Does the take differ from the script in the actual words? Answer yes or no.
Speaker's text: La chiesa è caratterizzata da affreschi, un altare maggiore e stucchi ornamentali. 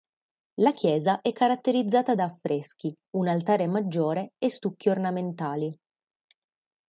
no